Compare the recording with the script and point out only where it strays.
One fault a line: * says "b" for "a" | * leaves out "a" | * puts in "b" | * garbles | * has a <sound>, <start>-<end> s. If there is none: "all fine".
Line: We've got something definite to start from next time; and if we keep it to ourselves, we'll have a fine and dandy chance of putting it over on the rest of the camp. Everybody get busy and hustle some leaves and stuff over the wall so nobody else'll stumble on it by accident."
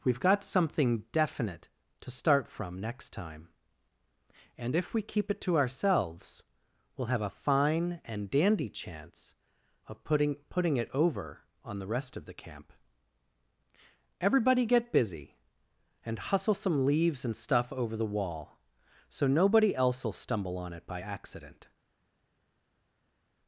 * puts in "putting"